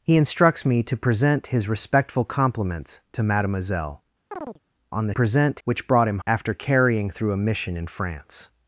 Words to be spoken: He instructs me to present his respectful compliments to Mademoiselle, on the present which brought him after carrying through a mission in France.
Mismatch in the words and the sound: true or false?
true